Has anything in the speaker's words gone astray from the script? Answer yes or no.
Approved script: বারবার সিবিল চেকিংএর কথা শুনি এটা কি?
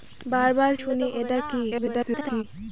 yes